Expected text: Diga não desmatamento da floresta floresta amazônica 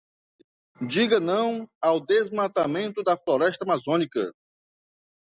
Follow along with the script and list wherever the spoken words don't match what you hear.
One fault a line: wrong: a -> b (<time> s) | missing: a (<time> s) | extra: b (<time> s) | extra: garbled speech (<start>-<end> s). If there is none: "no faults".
extra: ao (1.8 s)
missing: floresta (3.6 s)